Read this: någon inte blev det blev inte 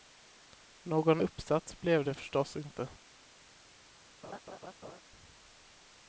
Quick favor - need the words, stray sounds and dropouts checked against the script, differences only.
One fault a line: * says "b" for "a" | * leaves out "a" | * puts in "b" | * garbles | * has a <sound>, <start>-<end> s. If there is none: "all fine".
* says "uppsats" for "inte"
* says "förstås" for "blev"
* has a laugh, 4.2-5.0 s